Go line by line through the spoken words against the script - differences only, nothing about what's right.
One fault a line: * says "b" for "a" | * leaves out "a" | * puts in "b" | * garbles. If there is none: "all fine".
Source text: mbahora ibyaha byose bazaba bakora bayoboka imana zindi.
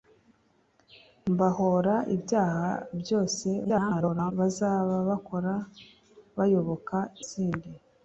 * garbles
* leaves out "imana"